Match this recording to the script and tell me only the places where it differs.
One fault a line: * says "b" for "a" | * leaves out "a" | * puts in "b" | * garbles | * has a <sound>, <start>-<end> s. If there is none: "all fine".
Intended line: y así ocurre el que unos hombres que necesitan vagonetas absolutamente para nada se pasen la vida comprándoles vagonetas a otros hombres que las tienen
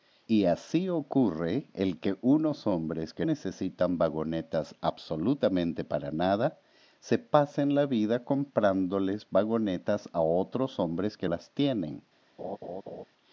* has a laugh, 12.4-13.0 s